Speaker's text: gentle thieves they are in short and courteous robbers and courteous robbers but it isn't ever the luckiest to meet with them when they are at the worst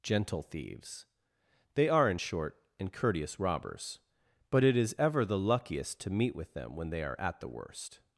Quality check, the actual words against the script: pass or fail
fail